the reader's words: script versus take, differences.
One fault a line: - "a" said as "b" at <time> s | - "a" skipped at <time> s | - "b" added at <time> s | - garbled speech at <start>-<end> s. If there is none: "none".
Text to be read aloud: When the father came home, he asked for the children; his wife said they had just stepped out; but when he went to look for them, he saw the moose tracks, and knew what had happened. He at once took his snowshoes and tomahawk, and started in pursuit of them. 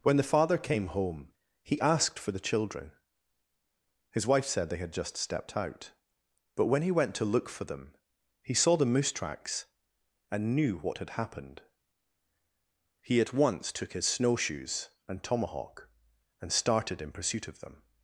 none